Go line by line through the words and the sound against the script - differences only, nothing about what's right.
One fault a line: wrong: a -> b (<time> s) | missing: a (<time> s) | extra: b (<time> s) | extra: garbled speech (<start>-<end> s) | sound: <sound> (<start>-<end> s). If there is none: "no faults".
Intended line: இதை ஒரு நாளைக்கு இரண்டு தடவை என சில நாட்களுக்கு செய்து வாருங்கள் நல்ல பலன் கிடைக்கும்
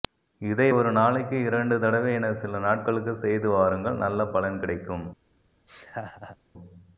sound: laugh (5.7-6.4 s)